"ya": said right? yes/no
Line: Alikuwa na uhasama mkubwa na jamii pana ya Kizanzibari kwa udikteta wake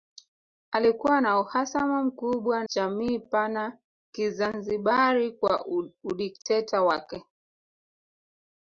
no